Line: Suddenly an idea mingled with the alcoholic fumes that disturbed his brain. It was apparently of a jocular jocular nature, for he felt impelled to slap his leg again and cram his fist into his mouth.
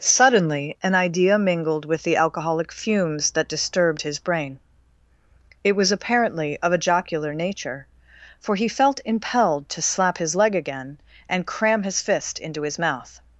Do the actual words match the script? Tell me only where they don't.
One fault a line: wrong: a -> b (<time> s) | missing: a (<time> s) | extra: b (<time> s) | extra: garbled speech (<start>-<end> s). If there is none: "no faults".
missing: jocular (7.3 s)